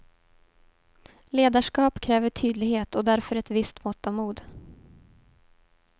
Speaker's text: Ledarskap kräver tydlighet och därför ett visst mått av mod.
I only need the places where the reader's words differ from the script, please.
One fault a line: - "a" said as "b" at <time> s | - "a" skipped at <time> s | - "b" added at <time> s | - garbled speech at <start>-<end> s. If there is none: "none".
none